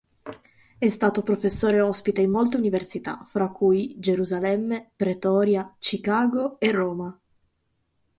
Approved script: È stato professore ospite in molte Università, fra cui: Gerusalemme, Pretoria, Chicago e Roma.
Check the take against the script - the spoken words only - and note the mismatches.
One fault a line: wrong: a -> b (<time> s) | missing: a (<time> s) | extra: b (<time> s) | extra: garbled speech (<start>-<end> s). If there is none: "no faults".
no faults